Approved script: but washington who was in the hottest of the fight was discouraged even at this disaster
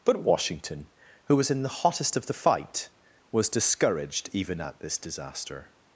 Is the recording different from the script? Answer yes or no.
no